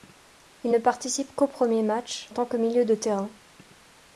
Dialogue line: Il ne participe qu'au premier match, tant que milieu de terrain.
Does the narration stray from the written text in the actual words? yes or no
no